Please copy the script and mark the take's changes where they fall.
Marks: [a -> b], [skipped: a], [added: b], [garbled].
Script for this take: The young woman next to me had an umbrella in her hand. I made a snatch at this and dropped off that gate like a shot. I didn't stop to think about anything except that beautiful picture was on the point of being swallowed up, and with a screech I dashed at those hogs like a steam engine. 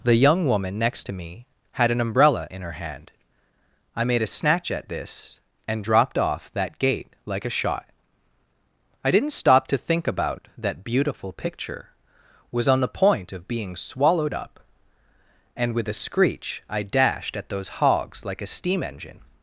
The young woman next to me had an umbrella in her hand. I made a snatch at this and dropped off that gate like a shot. I didn't stop to think about [skipped: anything except] that beautiful picture was on the point of being swallowed up, and with a screech I dashed at those hogs like a steam engine.